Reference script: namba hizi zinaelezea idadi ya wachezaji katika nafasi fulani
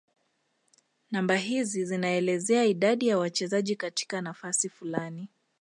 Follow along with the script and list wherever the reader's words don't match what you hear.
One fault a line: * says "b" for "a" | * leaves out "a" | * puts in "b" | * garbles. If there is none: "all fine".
all fine